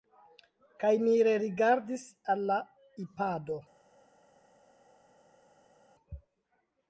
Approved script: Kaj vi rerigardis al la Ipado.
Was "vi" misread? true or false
true